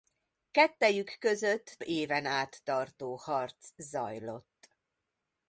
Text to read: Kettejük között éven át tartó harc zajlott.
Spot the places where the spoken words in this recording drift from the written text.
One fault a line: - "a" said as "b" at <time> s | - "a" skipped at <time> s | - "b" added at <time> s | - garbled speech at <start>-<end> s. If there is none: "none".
none